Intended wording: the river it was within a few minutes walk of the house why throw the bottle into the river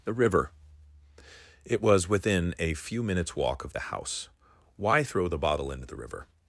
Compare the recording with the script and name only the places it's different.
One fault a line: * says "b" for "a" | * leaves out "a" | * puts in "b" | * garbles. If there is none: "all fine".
all fine